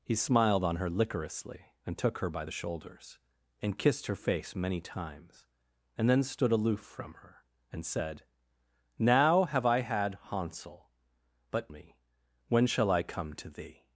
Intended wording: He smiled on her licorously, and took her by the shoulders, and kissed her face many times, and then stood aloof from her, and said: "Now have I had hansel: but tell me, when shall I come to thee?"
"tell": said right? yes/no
no